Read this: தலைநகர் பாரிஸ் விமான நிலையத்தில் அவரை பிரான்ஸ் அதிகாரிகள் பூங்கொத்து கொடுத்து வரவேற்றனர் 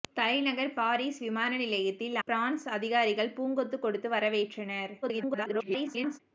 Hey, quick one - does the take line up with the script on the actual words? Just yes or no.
no